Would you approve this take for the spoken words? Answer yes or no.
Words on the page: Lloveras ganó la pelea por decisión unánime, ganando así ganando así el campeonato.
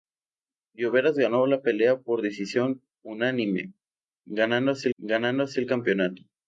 yes